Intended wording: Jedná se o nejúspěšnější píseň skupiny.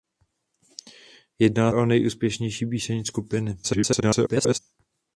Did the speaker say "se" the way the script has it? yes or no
no